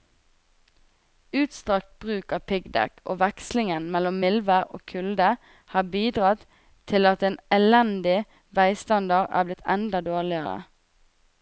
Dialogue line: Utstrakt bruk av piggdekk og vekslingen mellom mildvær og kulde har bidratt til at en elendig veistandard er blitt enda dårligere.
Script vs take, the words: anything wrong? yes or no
no